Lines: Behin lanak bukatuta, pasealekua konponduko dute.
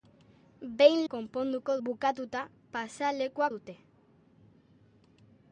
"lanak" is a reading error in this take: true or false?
true